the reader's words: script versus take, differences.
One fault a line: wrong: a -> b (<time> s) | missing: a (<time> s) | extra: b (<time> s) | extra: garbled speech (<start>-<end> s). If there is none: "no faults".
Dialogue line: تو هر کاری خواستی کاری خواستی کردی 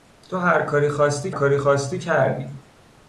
no faults